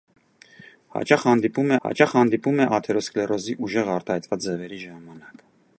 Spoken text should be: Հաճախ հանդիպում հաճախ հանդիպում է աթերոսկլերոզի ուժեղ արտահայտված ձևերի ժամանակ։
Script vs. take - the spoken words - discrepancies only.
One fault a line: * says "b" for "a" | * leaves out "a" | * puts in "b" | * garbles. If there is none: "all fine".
all fine